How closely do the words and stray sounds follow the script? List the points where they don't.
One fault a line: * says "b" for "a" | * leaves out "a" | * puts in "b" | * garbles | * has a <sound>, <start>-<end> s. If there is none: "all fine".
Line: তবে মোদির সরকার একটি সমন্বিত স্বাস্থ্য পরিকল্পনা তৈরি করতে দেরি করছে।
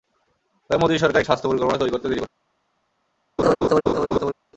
* leaves out "একটি সমন্বিত"
* has a laugh, 3.4-4.3 s